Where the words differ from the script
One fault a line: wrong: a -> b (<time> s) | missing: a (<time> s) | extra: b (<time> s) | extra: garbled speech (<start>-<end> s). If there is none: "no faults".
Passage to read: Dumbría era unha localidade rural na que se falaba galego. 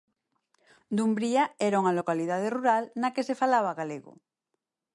no faults